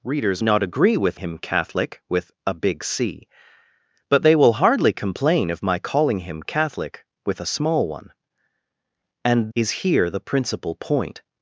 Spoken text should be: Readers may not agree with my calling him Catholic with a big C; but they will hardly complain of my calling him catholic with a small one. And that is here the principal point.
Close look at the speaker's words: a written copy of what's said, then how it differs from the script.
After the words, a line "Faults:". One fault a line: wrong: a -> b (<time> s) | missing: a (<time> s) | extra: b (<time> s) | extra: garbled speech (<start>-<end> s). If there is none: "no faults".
Readers not agree with him Catholic with a big C; but they will hardly complain of my calling him catholic with a small one. And is here the principal point.
Faults:
missing: may (0.4 s)
missing: my calling (1.2 s)
missing: that (9.5 s)